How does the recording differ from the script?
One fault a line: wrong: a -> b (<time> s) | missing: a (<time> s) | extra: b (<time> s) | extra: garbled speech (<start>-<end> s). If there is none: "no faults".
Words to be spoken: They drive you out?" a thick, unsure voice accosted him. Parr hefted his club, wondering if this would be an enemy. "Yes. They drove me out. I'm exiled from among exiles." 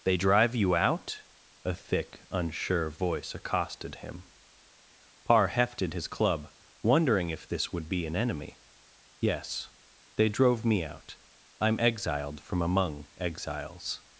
no faults